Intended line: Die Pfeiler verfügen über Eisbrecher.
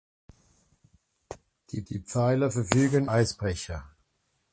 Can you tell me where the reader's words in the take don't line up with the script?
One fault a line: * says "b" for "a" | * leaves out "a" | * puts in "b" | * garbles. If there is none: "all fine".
* puts in "die"
* leaves out "über"